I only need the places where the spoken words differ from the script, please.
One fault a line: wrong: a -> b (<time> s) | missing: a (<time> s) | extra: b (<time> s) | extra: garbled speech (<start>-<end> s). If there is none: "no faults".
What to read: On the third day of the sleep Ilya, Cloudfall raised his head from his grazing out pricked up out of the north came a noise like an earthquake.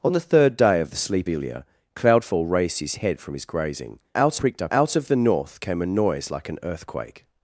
no faults